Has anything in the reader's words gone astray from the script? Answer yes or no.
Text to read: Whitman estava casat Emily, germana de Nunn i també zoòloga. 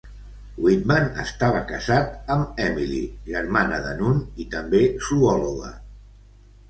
yes